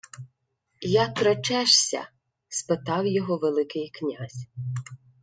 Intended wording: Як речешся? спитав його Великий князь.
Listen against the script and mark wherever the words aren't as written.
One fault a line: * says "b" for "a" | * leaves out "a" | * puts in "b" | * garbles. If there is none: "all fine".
all fine